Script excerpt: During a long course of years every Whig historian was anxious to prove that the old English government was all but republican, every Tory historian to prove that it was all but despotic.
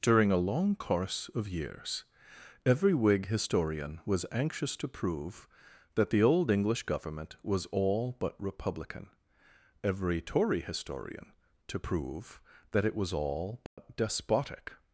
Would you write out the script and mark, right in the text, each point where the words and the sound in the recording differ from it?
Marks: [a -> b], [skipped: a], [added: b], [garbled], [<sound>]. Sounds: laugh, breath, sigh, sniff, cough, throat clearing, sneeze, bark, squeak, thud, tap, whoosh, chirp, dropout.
During a long course of years every Whig historian was anxious to prove that the old English government was all but republican, every Tory historian to prove that it was all but [dropout] despotic.